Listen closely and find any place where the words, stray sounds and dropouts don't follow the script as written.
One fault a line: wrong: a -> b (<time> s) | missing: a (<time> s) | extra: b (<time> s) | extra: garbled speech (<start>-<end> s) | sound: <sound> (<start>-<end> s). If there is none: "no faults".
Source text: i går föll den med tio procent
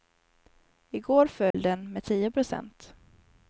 sound: dropout (1.5-1.5 s)